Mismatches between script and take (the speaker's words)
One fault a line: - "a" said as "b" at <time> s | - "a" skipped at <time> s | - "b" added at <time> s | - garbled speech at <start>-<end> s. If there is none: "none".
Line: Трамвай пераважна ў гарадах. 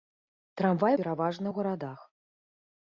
none